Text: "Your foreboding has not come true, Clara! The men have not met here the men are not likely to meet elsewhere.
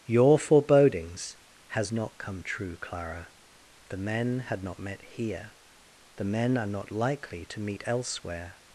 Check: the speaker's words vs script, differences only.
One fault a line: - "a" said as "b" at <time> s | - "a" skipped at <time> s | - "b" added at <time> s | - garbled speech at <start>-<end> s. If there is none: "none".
- "foreboding" said as "forebodings" at 0.4 s
- "have" said as "had" at 4.4 s